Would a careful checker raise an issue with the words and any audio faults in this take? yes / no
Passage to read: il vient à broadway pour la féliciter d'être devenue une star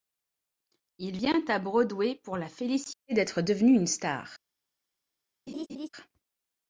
yes